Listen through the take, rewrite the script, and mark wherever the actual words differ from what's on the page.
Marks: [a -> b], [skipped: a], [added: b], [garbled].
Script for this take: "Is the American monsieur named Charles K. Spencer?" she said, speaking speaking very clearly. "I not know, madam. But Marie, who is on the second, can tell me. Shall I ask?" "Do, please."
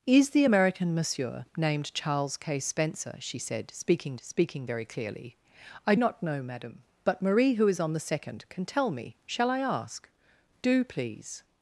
"Is the American monsieur named Charles K. Spencer?" she said, speaking speaking very clearly. "I not know, madam. But Marie, who is on the second, can tell me. Shall I ask?" "Do, please."